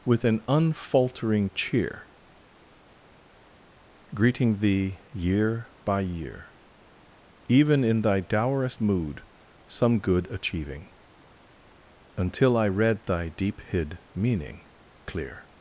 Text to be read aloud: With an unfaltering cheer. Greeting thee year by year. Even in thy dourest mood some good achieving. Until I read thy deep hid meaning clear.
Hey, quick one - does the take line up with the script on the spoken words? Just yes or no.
yes